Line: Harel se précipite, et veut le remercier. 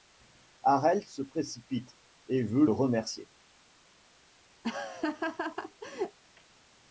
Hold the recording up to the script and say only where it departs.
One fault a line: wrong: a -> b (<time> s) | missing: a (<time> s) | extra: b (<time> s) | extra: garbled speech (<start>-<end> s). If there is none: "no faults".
missing: le (2.7 s)